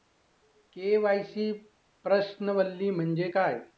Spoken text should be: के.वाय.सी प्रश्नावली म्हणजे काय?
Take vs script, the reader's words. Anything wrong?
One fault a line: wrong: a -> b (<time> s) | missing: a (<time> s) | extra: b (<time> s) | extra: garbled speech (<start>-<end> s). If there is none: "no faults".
no faults